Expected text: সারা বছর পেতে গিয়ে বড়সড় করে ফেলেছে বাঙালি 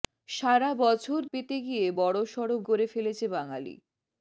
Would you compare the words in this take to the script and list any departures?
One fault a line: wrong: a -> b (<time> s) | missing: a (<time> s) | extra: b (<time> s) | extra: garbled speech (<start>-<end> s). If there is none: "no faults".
no faults